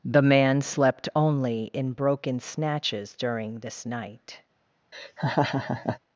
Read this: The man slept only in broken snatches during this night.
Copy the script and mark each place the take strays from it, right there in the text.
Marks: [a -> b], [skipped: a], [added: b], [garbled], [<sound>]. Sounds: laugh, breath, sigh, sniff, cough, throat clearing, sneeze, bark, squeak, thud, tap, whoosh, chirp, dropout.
The man slept only in broken snatches during this night. [laugh]